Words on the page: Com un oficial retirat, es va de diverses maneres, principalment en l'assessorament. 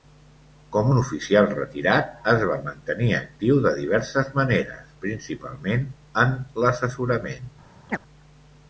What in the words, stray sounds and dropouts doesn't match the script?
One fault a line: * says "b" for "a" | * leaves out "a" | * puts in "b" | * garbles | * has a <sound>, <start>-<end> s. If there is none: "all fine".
* puts in "mantenir actiu"
* has a chirp, 7.9-8.0 s